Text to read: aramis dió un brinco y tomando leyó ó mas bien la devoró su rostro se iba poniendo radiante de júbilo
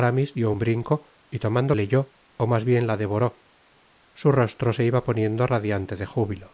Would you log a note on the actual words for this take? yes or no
no